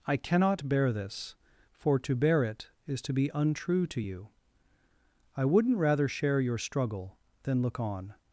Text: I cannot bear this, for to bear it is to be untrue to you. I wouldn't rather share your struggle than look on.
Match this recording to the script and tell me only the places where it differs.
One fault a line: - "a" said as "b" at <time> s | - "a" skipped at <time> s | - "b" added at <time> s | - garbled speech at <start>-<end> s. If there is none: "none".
none